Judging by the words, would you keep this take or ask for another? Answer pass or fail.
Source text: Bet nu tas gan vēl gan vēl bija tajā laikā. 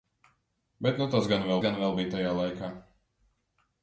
pass